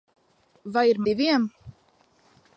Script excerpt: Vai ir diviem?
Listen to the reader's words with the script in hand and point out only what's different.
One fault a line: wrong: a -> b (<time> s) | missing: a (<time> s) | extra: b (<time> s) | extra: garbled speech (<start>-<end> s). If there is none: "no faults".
no faults